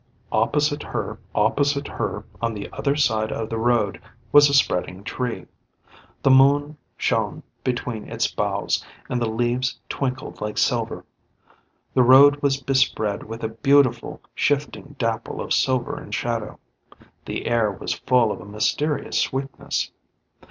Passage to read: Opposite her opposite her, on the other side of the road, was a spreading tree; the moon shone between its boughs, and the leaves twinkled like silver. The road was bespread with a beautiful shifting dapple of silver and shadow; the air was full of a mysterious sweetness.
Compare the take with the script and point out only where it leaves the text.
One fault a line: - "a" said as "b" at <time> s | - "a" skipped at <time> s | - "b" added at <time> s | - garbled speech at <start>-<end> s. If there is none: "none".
none